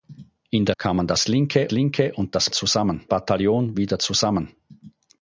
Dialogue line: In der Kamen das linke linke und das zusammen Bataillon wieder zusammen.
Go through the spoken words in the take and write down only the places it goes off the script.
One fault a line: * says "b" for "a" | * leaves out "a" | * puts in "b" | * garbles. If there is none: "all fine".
all fine